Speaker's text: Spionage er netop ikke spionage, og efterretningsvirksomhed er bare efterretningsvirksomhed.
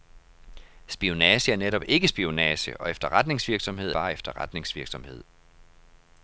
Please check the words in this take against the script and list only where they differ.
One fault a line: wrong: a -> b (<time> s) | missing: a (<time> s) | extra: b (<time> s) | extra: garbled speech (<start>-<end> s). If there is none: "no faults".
no faults